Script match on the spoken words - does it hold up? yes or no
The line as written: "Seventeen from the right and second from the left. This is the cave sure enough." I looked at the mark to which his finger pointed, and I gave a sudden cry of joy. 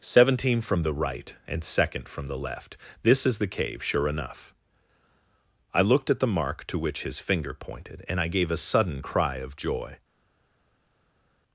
yes